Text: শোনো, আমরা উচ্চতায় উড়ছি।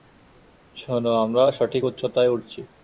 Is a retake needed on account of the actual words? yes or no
yes